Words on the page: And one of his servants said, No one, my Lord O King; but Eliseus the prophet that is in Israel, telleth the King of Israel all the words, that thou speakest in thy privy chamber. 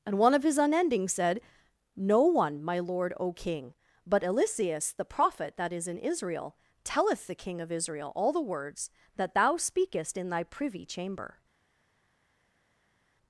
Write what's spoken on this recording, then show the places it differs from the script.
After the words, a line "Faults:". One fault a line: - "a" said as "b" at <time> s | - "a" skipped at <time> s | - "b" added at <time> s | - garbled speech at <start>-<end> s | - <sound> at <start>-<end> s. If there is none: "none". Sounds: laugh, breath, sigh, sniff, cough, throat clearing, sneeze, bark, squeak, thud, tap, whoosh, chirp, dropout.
And one of his unending said, No one, my Lord O King; but Eliseus the prophet that is in Israel, telleth the King of Israel all the words, that thou speakest in thy privy chamber.
Faults:
- "servants" said as "unending" at 0.6 s